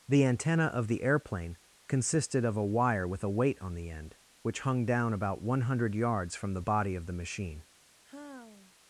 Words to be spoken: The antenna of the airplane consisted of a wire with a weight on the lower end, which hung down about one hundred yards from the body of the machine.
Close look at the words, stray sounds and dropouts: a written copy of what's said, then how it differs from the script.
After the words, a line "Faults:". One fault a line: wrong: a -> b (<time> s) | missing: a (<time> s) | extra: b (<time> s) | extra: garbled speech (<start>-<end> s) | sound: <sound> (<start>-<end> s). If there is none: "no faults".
The antenna of the airplane consisted of a wire with a weight on the end, which hung down about one hundred yards from the body of the machine.
Faults:
missing: lower (3.9 s)
sound: sigh (8.0-8.8 s)